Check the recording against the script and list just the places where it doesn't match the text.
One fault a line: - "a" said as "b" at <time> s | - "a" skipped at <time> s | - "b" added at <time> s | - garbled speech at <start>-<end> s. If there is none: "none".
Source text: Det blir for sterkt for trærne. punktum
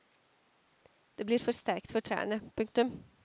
none